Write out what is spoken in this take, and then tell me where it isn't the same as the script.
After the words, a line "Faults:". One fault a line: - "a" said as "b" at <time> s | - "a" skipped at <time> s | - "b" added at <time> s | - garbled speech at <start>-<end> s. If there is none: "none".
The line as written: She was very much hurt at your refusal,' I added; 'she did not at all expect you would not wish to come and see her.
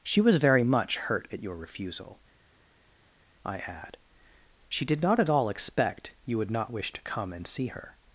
She was very much hurt at your refusal,' I add; 'she did not at all expect you would not wish to come and see her.
Faults:
- "added" said as "add" at 3.6 s